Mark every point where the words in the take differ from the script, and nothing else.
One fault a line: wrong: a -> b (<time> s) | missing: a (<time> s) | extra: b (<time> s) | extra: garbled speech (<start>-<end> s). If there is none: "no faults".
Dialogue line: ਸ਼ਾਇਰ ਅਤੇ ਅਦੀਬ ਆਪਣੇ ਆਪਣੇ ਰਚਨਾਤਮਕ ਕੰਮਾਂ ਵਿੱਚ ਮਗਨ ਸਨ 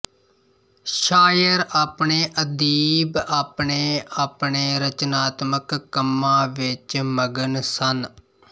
no faults